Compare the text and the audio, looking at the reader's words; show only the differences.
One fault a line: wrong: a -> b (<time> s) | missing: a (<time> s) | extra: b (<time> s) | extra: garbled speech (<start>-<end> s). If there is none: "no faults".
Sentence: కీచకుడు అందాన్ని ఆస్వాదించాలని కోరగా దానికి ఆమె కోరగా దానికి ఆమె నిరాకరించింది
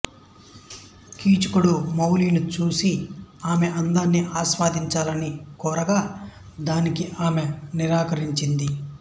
wrong: అందాన్ని ఆస్వాదించాలని కోరగా దానికి ఆమె -> మాలిని చూసి ఆమె అందాన్ని ఆస్వాదించాలని (1.9 s)